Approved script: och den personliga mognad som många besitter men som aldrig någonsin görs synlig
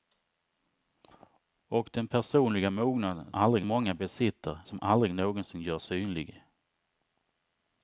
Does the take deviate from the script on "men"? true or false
true